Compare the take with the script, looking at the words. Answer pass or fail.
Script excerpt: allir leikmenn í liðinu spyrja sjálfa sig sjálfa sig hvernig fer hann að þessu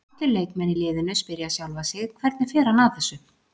fail